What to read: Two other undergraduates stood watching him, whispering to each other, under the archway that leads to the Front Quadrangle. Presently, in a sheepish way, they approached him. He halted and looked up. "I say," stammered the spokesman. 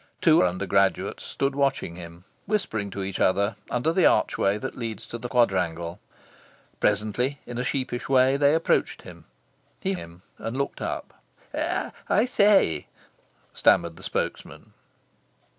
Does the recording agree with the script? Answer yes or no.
no